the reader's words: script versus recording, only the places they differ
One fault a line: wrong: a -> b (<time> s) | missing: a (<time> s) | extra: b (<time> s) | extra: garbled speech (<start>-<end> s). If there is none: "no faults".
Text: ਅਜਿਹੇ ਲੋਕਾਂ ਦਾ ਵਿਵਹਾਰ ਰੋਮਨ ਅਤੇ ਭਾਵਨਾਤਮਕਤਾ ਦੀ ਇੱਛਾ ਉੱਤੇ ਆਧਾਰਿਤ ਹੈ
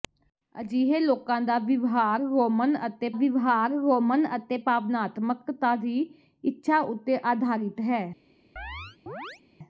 extra: ਵਿਵਹਾਰ ਰੋਮਨ ਅਤੇ (3.1 s)